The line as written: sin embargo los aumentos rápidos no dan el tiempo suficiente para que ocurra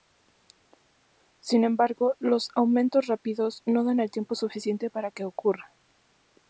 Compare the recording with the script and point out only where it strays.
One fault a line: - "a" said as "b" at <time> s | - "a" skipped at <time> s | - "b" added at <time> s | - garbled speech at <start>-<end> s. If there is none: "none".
none